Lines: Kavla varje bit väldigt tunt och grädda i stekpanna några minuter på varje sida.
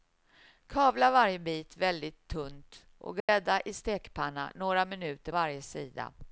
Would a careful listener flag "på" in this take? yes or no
yes